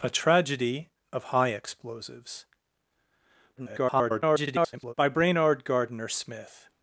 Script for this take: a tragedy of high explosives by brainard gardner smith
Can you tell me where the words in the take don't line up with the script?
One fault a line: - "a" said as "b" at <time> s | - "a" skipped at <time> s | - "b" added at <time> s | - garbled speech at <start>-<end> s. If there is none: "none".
- garbled speech at 3.6-4.9 s